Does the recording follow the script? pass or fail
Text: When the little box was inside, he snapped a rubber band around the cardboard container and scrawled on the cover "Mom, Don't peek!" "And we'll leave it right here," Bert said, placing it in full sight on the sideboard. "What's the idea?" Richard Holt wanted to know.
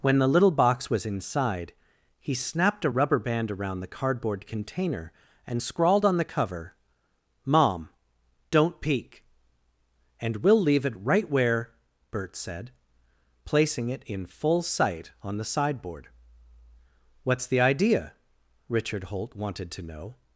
fail